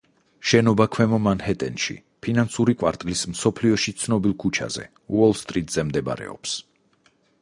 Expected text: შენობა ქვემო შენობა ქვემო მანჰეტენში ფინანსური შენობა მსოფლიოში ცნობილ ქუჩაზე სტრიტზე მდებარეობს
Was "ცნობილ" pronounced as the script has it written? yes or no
yes